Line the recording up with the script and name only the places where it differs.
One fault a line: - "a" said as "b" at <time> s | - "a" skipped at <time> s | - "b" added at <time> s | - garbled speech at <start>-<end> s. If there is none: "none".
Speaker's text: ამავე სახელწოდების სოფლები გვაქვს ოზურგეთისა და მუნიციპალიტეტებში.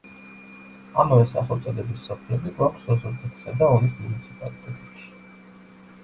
- "ონის" added at 3.8 s